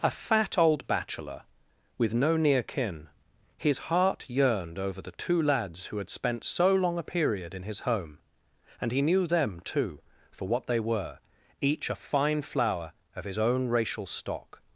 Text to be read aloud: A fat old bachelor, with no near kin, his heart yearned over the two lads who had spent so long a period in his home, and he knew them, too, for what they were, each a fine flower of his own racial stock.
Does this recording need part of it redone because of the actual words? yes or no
no